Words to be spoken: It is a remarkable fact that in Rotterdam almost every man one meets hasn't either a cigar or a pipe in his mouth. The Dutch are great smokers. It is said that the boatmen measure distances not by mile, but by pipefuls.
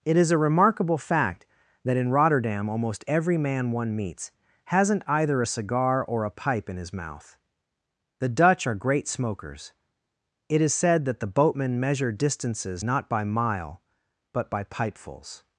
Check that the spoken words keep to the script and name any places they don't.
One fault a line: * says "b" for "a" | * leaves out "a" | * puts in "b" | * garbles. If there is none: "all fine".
all fine